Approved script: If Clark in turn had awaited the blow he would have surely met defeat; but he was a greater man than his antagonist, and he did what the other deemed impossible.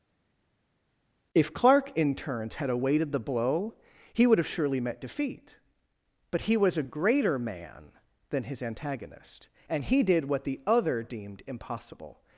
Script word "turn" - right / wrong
wrong